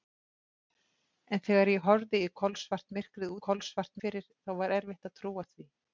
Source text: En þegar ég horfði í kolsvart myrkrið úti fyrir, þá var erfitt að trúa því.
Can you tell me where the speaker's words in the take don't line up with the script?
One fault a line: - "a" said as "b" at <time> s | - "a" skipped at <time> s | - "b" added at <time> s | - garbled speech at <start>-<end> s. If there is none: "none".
- "úti" said as "kolsvart" at 3.5 s